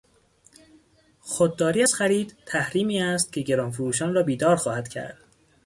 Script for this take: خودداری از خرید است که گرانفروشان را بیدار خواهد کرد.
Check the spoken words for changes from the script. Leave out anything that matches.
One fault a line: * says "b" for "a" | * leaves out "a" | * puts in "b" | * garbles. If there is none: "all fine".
* puts in "تحریمی"